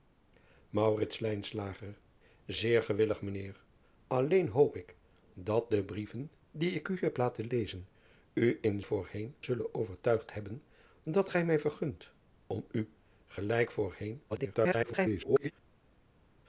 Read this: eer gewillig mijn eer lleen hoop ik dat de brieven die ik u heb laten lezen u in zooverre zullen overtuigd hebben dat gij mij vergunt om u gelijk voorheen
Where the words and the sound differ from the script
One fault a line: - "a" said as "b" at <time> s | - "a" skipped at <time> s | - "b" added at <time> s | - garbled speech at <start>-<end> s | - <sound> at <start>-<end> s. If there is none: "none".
- "zooverre" said as "voorheen" at 8.8 s
- garbled speech at 14.3-15.5 s